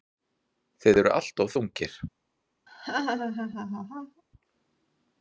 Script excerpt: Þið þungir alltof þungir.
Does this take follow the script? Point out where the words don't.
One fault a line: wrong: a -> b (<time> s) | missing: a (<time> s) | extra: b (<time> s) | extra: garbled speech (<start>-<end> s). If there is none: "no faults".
wrong: þungir -> eruð (1.0 s)